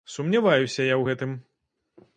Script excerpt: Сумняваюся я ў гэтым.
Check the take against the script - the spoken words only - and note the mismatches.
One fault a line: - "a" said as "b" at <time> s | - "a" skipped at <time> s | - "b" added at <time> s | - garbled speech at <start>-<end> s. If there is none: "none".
none